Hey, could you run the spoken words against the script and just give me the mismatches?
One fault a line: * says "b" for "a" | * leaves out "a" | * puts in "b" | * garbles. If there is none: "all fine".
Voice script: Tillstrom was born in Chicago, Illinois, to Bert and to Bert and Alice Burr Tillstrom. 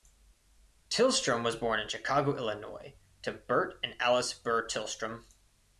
* leaves out "to Bert and"